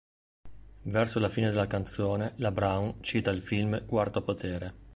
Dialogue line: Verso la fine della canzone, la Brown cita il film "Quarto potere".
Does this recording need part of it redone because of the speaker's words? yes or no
no